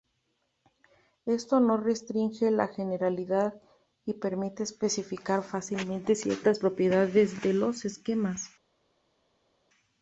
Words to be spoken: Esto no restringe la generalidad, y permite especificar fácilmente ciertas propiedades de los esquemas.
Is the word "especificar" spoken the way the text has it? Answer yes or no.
yes